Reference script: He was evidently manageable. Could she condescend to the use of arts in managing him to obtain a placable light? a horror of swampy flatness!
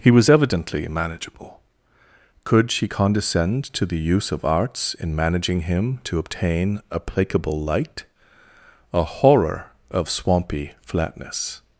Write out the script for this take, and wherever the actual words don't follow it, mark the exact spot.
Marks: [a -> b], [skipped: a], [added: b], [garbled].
He was evidently manageable. Could she condescend to the use of arts in managing him to obtain a placable light? a horror of swampy flatness!